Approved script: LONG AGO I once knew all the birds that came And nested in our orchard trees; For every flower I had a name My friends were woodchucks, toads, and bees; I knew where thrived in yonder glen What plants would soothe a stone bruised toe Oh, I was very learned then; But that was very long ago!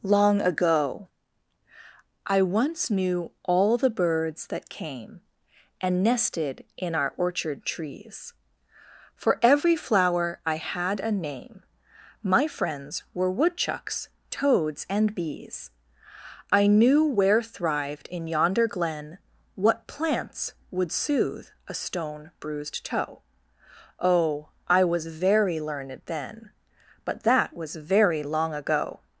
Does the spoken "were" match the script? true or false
true